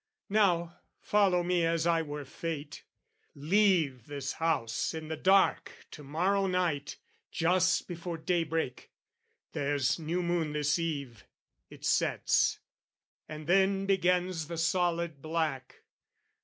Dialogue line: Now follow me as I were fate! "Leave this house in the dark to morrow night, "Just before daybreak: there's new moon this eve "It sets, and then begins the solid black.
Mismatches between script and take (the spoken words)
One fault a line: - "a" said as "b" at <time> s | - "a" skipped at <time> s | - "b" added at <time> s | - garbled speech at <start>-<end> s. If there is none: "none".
none